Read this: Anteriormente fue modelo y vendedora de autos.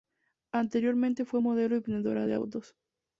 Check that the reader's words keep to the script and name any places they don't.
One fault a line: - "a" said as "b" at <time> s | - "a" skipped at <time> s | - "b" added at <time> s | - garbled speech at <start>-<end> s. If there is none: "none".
none